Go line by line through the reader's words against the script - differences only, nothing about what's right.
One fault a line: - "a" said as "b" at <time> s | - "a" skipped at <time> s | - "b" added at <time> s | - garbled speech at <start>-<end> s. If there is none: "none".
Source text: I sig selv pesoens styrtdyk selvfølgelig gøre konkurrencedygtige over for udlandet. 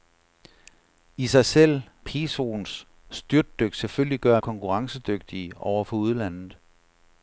none